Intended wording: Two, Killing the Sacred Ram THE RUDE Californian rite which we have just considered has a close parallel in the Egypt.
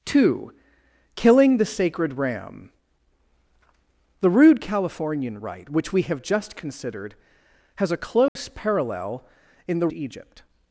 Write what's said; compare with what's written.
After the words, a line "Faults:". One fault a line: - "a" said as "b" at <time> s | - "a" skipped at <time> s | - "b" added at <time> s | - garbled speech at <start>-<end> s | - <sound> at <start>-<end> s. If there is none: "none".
Two, Killing the Sacred Ram THE RUDE Californian rite which we have just considered has a close parallel in the Egypt.
Faults:
- dropout at 8.3-8.4 s